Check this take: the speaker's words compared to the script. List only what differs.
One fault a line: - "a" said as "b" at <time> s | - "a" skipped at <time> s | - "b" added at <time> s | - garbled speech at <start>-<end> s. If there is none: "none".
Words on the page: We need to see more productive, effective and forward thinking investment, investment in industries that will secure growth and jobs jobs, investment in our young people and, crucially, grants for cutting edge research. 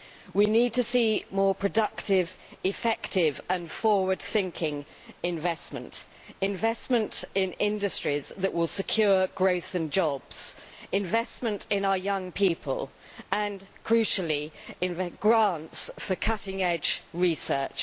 - "jobs" skipped at 10.6 s